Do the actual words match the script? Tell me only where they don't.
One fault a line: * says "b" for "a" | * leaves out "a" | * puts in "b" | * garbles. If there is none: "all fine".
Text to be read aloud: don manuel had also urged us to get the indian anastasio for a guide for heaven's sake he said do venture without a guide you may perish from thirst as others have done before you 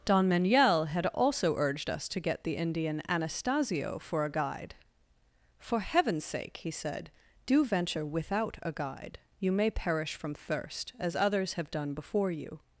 all fine